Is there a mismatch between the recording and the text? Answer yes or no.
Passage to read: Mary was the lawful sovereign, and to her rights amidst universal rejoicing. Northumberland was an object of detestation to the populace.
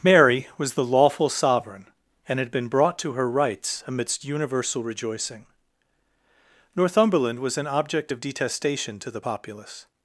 yes